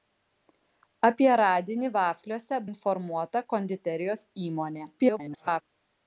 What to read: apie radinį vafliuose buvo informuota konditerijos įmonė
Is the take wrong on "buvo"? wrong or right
wrong